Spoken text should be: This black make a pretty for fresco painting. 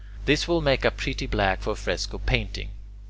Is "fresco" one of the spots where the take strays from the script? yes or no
no